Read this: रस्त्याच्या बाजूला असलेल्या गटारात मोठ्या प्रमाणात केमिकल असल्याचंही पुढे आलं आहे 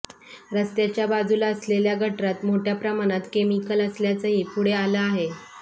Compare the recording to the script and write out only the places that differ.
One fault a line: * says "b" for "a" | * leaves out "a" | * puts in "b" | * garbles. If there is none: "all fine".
all fine